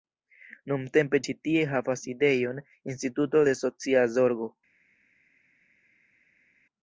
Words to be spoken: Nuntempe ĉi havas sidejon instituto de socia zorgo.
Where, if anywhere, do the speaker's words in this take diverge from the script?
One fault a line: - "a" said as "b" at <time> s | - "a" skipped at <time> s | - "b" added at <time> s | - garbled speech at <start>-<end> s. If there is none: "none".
- "tie" added at 1.5 s